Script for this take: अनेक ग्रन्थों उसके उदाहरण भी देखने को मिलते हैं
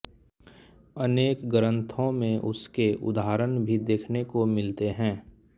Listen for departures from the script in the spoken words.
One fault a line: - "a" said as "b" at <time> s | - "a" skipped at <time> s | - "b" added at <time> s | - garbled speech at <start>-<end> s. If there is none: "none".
- "में" added at 2.1 s